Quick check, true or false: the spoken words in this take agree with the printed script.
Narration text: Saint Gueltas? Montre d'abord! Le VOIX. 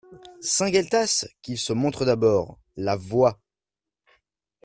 false